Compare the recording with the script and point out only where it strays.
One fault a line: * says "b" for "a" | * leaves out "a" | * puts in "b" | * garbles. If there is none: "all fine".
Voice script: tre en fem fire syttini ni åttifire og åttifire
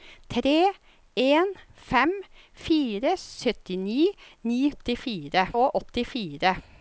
all fine